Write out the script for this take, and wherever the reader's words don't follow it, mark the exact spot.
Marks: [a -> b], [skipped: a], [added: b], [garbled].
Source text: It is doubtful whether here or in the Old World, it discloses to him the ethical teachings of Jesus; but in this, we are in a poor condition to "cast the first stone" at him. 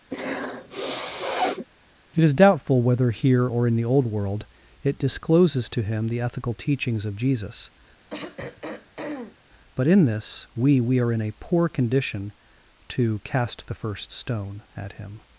It is doubtful whether here or in the Old World, it discloses to him the ethical teachings of Jesus; but in this, we [added: we] are in a poor condition to "cast the first stone" at him.